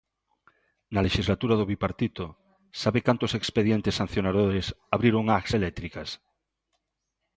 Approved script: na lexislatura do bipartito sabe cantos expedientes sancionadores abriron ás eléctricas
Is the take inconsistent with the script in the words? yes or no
no